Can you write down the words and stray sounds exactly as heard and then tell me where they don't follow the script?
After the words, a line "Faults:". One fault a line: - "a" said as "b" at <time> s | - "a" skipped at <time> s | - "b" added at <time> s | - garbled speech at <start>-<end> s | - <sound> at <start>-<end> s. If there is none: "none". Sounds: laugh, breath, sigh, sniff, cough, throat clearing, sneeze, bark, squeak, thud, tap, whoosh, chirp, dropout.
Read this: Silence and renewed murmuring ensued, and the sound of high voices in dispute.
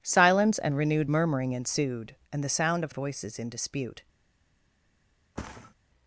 Silence and renewed murmuring ensued, and the sound of voices in dispute.
Faults:
- "high" skipped at 2.9 s
- thud at 5.4-5.7 s